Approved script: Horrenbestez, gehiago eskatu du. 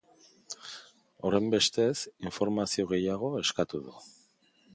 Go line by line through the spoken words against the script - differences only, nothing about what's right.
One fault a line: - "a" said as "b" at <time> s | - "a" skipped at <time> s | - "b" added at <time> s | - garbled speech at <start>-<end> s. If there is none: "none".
- "informazio" added at 2.3 s